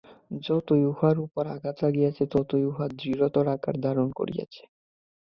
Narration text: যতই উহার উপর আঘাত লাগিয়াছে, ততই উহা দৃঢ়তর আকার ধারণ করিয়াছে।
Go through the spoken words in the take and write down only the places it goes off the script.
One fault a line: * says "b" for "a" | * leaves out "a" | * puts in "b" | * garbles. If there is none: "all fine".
all fine